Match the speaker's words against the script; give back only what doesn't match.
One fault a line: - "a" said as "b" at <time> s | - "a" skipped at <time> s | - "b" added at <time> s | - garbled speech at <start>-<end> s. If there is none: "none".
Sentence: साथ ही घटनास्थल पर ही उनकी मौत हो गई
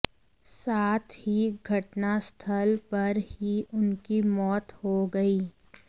none